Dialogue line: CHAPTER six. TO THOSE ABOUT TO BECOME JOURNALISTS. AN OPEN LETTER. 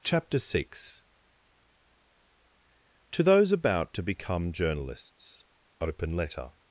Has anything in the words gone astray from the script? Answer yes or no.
yes